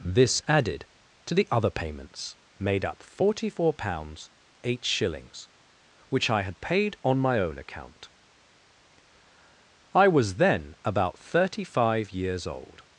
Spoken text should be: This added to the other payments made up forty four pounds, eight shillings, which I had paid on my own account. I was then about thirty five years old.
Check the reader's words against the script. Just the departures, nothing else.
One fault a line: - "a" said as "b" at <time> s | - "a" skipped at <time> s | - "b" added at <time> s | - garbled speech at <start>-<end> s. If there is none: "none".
none